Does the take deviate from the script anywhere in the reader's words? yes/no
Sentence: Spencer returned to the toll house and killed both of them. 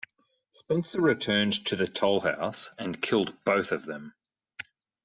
no